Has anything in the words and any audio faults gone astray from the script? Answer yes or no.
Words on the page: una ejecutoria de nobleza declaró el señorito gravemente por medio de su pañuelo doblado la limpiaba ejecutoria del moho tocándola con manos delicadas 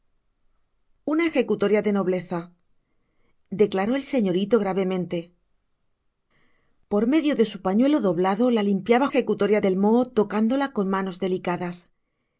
no